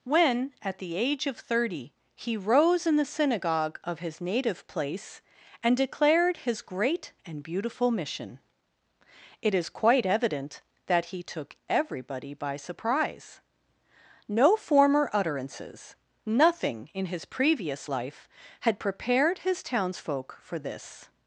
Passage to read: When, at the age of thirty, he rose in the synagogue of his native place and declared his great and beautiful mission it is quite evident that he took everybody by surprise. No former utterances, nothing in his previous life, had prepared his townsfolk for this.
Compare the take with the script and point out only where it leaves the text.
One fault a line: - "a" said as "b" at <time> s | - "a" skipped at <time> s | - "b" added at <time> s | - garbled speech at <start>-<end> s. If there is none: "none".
none